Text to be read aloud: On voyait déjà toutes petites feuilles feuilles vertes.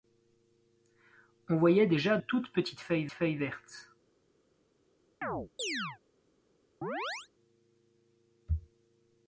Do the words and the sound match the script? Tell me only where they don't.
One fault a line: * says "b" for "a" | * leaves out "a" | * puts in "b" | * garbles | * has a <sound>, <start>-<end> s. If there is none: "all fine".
* has a chirp, 5.2-6.0 s
* has a chirp, 6.8-7.3 s